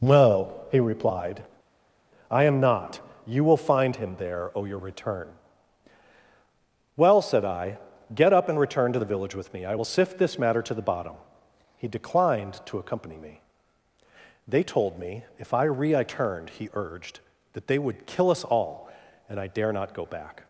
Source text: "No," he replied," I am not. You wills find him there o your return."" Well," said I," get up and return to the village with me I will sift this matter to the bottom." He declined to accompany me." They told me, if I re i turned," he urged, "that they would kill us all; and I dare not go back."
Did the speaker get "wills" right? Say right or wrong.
wrong